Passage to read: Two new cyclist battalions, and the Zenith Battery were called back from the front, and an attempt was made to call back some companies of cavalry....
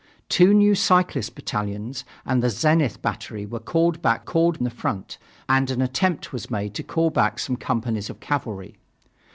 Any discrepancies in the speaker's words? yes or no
yes